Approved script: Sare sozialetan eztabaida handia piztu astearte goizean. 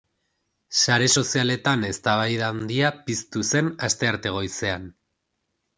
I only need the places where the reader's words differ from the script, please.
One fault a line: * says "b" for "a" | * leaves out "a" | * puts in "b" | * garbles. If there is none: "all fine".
* puts in "zen"